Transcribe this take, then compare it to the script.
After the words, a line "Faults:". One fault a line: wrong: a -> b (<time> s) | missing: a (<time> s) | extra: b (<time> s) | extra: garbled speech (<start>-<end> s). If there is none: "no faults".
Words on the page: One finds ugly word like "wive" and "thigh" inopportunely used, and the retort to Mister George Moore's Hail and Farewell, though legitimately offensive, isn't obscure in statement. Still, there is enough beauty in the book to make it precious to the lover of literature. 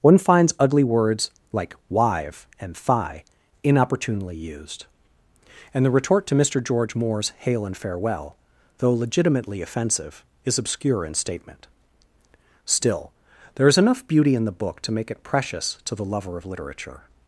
One finds ugly words like "wive" and "thigh" inopportunely used, and the retort to Mister George Moore's Hail and Farewell, though legitimately offensive, is obscure in statement. Still, there is enough beauty in the book to make it precious to the lover of literature.
Faults:
wrong: word -> words (0.8 s)
wrong: isn't -> is (10.4 s)